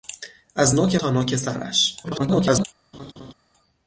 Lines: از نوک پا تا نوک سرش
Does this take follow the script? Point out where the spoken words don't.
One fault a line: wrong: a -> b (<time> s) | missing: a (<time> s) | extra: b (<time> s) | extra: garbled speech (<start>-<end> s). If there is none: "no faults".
missing: پا (1.0 s)
extra: garbled speech (2.0-2.6 s)